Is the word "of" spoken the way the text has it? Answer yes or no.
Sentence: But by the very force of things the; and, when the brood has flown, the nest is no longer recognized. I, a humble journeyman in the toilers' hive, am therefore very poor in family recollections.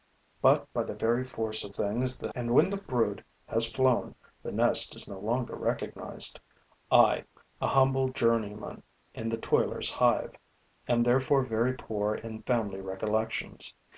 yes